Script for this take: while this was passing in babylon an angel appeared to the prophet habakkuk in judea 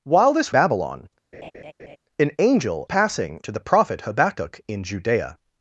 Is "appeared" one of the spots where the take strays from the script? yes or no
yes